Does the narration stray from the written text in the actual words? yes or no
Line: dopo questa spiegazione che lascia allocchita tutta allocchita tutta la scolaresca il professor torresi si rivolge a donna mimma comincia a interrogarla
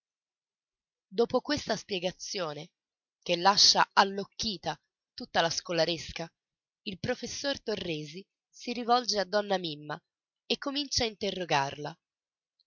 yes